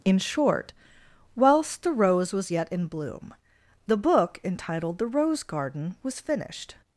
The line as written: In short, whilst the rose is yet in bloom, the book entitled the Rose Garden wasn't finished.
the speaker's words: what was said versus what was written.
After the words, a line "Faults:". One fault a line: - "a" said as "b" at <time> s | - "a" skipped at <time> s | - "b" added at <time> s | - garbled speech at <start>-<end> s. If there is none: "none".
In short, whilst the rose was yet in bloom, the book entitled the Rose Garden was finished.
Faults:
- "is" said as "was" at 2.3 s
- "wasn't" said as "was" at 6.0 s